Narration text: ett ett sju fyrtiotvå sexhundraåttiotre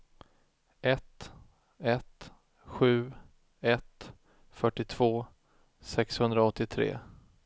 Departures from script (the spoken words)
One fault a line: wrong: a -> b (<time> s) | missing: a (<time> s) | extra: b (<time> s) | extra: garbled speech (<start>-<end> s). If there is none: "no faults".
extra: ett (3.6 s)